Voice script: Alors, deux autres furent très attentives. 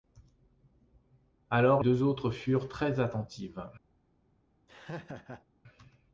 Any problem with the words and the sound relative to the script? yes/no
yes